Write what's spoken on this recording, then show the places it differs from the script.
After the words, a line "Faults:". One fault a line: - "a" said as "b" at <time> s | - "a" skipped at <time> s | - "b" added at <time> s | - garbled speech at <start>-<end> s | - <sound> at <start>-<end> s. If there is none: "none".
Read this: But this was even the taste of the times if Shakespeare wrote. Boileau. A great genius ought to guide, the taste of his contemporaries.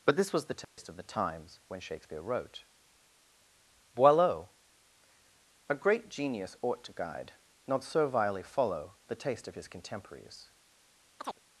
But this was the taste of the times when Shakespeare wrote. Boileau. A great genius ought to guide, not servilely follow, the taste of his contemporaries.
Faults:
- "even" skipped at 0.5 s
- dropout at 0.6-0.8 s
- "if" said as "when" at 1.7 s
- "not servilely follow" added at 7.7 s
- chirp at 11.2-11.4 s